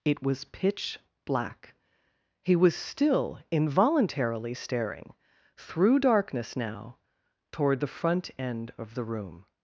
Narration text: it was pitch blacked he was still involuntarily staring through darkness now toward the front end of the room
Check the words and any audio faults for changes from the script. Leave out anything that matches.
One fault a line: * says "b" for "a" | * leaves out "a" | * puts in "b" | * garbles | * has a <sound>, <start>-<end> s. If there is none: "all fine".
* says "black" for "blacked"